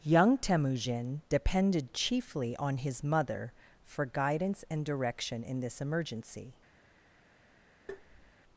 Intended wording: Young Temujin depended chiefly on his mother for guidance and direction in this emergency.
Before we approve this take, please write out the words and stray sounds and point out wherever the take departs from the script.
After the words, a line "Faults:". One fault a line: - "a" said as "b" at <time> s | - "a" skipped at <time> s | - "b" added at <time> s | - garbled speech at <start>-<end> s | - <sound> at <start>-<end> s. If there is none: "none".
Young Temujin depended chiefly on his mother for guidance and direction in this emergency.
Faults:
- tap at 7.9-8.3 s